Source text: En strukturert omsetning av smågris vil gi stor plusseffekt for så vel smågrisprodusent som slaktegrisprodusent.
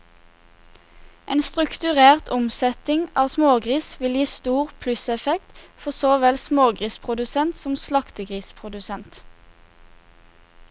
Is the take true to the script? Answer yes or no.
yes